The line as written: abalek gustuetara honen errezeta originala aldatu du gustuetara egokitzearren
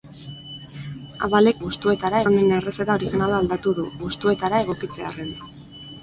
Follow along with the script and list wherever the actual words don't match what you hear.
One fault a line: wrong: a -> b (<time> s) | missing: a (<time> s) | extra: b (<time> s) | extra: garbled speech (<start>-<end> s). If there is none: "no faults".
no faults